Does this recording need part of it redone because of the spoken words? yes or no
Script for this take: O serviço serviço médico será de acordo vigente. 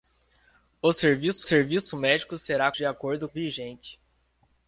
no